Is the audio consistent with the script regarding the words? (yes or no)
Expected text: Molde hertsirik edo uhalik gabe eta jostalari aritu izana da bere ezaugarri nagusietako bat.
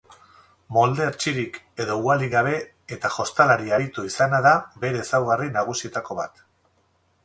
yes